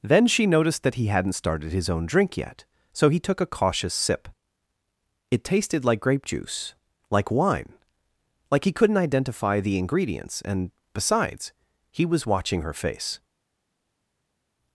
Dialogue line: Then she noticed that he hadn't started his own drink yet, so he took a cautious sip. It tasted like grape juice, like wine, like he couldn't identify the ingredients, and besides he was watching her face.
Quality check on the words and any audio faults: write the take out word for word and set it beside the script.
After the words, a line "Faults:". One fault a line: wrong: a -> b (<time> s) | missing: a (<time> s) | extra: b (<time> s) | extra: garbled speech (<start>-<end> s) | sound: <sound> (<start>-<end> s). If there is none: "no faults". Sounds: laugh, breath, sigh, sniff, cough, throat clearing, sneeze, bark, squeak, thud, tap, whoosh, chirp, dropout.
Then she noticed that he hadn't started his own drink yet, so he took a cautious sip. It tasted like grape juice, like wine, like he couldn't identify the ingredients, and besides he was watching her face.
Faults:
no faults